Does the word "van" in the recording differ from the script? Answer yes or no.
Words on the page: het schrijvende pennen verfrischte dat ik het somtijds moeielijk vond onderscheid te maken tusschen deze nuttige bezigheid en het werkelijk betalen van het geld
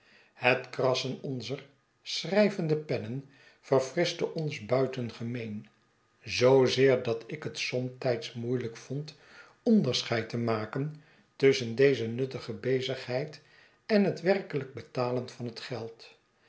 no